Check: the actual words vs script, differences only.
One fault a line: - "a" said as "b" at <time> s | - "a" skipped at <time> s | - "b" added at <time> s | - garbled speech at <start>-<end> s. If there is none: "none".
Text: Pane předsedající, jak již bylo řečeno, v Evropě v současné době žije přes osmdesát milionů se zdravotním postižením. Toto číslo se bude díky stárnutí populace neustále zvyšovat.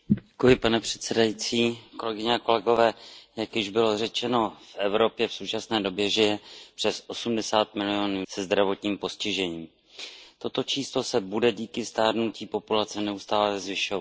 none